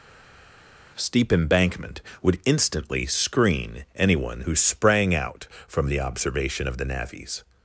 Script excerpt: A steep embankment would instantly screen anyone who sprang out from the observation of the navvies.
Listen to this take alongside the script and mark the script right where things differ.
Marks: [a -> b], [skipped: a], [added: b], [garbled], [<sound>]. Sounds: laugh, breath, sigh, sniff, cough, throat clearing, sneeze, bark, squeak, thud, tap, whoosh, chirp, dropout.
[skipped: A] steep embankment would instantly screen anyone who sprang out from the observation of the navvies.